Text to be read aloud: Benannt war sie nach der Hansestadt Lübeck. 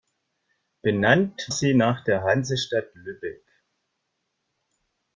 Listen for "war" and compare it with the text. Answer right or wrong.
wrong